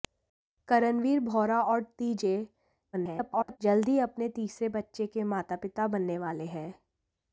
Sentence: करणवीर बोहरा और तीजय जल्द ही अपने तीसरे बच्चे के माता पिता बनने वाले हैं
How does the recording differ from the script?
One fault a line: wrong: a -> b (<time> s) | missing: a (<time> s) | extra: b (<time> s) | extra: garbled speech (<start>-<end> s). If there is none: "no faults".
extra: garbled speech (2.9-3.6 s)